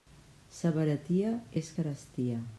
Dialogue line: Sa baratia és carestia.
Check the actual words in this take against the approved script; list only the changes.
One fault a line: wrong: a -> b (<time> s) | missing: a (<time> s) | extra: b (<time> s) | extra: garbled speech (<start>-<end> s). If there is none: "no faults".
no faults